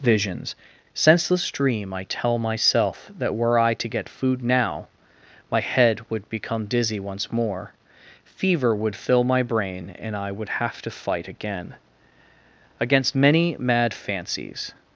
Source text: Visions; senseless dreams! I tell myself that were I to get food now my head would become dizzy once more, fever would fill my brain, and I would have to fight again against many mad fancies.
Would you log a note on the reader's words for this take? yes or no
yes